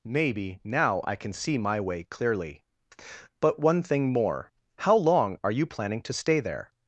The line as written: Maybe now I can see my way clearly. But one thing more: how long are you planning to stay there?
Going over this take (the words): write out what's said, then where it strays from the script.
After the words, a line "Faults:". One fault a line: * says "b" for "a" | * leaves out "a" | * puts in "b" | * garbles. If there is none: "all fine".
Maybe now I can see my way clearly. But one thing more: how long are you planning to stay there?
Faults:
all fine